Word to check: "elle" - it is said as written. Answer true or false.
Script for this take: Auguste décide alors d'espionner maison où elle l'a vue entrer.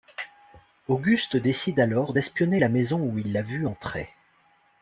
false